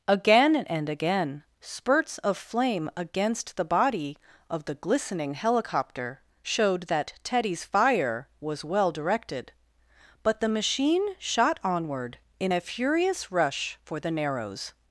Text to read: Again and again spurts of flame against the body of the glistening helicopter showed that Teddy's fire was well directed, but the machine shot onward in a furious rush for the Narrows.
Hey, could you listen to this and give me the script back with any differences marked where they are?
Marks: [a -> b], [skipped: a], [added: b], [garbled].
Again and again spurts of flame against the body of the glistening helicopter showed that Teddy's fire was well directed, but the machine shot onward in a furious rush for the Narrows.